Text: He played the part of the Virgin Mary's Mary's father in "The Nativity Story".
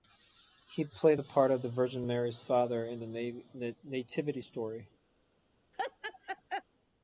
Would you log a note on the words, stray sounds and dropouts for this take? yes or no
yes